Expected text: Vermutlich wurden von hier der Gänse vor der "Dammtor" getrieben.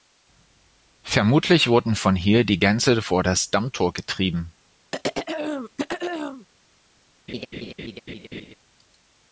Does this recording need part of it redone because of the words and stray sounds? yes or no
yes